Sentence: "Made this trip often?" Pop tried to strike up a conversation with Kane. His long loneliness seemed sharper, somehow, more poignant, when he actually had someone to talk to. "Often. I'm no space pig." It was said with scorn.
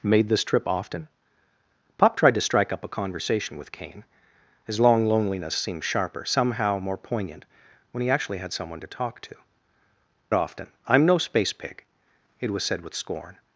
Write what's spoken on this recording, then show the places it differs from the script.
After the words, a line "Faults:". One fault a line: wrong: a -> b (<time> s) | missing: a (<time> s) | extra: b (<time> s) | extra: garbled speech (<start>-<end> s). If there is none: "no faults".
"Made this trip often?" Pop tried to strike up a conversation with Kane. His long loneliness seemed sharper, somehow, more poignant, when he actually had someone to talk to. "Often. I'm no space pig." It was said with scorn.
Faults:
no faults